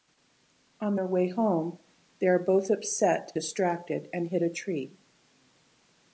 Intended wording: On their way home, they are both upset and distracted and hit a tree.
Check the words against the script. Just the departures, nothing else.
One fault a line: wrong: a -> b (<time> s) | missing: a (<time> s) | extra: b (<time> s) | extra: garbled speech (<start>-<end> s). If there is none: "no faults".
missing: and (3.3 s)